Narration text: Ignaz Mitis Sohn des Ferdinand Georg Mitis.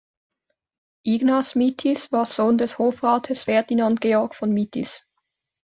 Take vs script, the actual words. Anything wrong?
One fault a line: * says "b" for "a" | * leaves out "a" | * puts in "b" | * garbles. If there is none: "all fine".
* puts in "war"
* puts in "Hofrates"
* puts in "von"